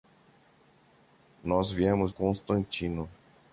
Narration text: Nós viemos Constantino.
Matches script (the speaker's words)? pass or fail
pass